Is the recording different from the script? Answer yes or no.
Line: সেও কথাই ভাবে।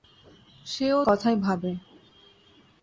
no